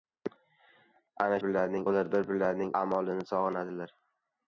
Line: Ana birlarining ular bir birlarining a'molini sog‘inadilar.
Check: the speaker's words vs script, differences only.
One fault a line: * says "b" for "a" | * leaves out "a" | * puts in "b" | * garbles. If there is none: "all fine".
all fine